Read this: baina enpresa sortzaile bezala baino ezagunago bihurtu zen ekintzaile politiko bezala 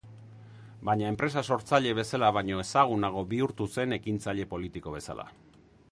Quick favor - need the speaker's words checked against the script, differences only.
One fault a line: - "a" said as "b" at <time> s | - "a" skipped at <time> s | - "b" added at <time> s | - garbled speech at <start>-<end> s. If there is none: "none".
none